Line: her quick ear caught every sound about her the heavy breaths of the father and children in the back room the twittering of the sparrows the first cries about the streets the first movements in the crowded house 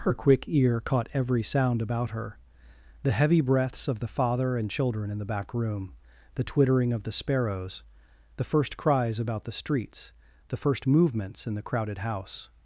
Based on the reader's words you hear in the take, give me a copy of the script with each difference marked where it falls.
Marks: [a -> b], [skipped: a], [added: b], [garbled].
her quick ear caught every sound about her the heavy breaths of the father and children in the back room the twittering of the sparrows the first cries about the streets the first movements in the crowded house